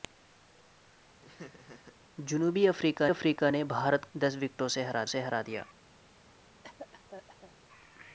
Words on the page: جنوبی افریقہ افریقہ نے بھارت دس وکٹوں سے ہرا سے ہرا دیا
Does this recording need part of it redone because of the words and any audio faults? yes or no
yes